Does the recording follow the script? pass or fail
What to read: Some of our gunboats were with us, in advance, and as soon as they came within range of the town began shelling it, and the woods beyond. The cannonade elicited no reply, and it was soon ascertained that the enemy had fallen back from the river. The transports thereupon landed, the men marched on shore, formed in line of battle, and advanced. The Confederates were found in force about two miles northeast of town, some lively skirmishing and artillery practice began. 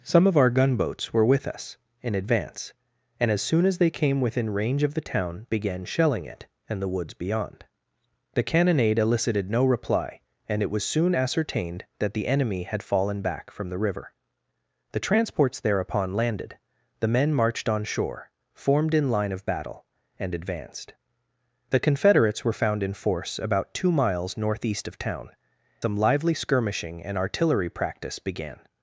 pass